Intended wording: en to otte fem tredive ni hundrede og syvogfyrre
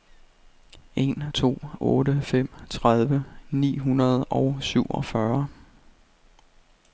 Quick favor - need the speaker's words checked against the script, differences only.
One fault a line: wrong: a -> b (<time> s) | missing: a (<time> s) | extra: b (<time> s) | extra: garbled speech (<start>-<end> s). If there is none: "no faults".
no faults